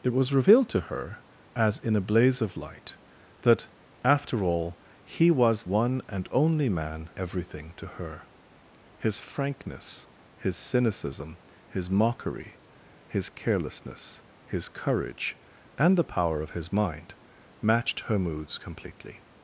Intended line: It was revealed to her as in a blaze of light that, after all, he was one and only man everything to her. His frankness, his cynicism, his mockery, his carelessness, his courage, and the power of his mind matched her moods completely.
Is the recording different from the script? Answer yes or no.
no